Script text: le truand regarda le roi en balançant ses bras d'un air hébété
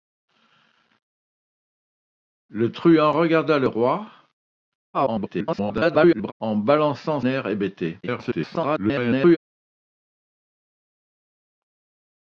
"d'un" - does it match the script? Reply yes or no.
no